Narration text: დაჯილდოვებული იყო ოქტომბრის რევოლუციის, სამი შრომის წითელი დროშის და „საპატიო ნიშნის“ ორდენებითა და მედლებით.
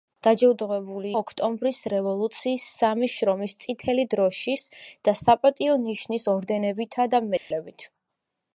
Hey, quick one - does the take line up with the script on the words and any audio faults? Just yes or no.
no